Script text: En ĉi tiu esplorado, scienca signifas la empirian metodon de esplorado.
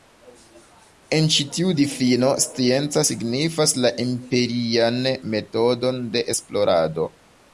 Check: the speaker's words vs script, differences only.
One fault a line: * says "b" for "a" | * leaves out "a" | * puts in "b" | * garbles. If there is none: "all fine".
* says "difino" for "esplorado"